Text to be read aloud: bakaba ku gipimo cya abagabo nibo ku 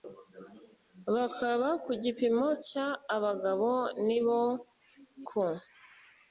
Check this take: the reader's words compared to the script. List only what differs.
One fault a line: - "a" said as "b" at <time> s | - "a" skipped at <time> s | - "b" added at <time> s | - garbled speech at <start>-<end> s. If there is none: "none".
none